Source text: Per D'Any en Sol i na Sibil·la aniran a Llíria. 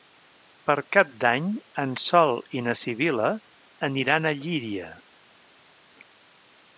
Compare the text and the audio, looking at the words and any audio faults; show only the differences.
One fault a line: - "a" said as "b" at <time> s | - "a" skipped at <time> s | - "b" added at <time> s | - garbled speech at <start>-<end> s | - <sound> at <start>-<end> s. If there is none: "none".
- "Cap" added at 0.9 s